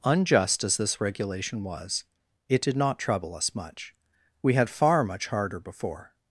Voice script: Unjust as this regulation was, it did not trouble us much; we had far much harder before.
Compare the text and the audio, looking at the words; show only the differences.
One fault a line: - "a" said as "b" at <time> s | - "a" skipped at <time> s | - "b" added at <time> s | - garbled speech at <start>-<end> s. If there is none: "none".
none